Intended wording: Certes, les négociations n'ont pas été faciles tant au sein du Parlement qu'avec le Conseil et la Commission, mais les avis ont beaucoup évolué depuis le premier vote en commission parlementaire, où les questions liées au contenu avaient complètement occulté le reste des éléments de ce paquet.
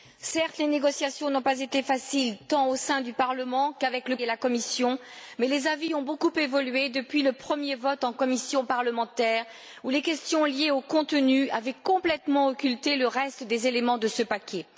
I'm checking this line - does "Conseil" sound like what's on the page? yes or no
no